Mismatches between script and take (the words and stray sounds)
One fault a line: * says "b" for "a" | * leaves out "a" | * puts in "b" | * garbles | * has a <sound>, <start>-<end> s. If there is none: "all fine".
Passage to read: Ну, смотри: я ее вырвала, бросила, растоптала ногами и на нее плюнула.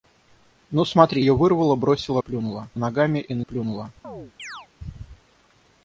* leaves out "я"
* says "плюнула" for "растоптала"
* leaves out "нее"
* has a chirp, 4.0-4.7 s